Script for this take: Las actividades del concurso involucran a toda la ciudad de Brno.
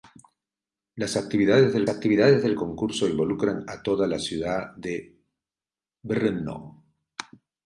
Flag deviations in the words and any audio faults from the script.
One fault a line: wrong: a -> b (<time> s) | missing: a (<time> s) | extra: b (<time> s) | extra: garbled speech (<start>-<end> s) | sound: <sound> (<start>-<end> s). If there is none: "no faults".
extra: actividades del (1.9 s)